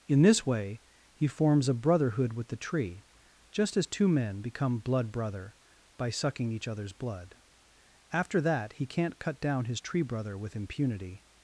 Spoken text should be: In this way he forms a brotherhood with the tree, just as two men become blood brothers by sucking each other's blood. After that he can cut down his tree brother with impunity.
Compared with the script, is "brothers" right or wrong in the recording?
wrong